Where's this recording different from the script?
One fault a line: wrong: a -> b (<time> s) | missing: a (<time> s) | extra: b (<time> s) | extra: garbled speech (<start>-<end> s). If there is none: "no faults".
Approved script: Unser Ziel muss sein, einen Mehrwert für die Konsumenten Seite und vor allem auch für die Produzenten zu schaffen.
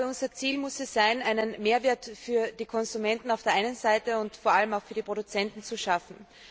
extra: es (0.8 s)
extra: auf der einen (3.3 s)